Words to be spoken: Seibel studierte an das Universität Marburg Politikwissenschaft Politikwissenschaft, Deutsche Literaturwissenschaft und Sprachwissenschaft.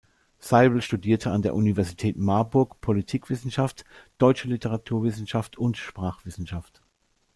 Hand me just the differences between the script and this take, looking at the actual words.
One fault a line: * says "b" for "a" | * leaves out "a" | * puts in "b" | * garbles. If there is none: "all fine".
* says "der" for "das"
* leaves out "Politikwissenschaft"